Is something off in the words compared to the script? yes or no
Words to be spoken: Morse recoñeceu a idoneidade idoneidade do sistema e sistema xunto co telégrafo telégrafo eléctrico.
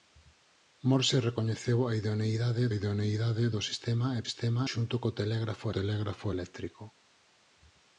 no